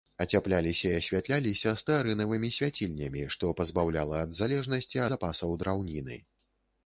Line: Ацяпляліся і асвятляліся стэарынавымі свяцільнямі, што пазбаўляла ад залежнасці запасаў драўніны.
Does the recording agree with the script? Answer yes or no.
yes